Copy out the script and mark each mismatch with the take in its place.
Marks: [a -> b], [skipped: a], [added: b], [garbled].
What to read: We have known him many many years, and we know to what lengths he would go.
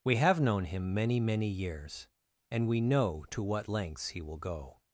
We have known him many many years, and we know to what lengths he [would -> will] go.